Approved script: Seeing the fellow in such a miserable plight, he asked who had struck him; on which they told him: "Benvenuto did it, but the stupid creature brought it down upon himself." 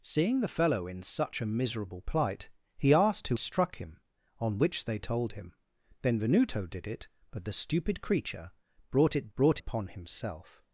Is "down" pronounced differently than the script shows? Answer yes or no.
yes